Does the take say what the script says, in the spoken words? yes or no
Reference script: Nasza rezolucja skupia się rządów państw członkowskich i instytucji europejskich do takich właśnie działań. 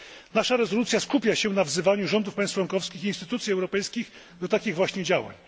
no